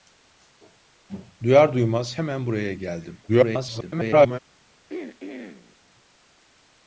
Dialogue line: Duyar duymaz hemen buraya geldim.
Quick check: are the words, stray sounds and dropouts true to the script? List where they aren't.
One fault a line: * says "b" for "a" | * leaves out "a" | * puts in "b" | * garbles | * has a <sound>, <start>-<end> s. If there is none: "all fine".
* garbles
* has a throat clearing, 4.9-5.8 s